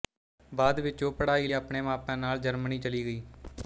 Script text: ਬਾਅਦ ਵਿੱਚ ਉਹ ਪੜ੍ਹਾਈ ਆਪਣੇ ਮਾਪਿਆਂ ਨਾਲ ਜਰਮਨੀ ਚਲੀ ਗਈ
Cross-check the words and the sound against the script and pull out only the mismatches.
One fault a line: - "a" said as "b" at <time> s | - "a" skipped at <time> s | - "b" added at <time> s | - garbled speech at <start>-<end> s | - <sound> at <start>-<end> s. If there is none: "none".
none